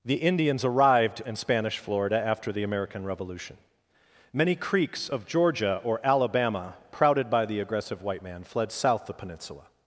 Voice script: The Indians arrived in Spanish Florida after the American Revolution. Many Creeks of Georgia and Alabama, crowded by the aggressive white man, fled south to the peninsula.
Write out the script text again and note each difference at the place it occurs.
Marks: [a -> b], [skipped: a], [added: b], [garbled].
The Indians arrived in Spanish Florida after the American Revolution. Many Creeks of Georgia [and -> or] Alabama, crowded by the aggressive white man, fled south [skipped: to] the peninsula.